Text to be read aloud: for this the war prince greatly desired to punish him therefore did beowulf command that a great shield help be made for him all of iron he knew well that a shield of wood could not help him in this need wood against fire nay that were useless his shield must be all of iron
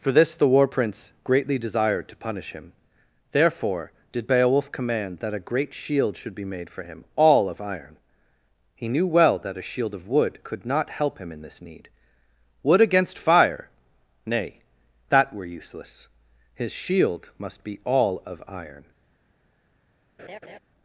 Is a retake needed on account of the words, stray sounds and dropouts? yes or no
yes